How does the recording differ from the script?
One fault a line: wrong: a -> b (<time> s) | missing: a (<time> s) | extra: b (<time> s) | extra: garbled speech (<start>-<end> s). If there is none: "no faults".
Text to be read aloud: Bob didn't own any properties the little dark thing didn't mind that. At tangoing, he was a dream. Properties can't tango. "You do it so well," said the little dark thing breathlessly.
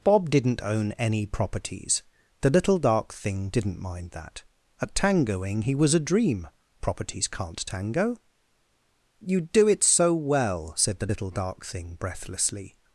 no faults